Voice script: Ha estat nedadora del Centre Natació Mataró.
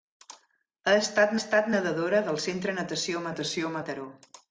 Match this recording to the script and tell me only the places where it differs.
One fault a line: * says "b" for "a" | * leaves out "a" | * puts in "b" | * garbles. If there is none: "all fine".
* puts in "estat"
* puts in "Natació"